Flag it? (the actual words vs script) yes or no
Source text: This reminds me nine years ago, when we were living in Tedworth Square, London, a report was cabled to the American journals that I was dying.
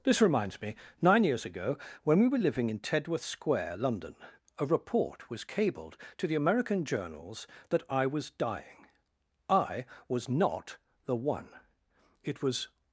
yes